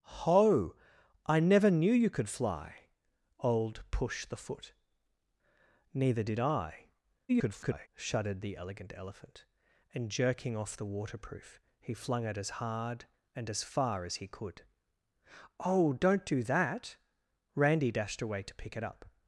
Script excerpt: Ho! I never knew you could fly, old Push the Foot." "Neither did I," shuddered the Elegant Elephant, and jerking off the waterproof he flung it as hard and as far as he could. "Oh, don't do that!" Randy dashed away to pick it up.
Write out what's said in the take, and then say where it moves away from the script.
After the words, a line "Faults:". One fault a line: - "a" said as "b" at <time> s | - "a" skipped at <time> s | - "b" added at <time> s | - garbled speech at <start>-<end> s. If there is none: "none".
Ho! I never knew you could fly, old Push the Foot." "Neither did I," [garbled] shuddered the Elegant Elephant, and jerking off the waterproof he flung it as hard and as far as he could. "Oh, don't do that!" Randy dashed away to pick it up.
Faults:
- garbled speech at 7.3-7.9 s